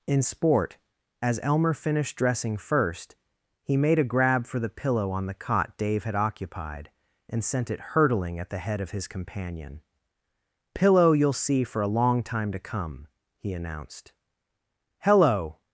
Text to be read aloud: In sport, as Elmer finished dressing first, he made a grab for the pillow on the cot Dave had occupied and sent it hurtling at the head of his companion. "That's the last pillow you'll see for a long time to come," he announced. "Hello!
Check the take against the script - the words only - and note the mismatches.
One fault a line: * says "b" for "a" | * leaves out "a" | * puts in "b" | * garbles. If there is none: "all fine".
* leaves out "That's the last"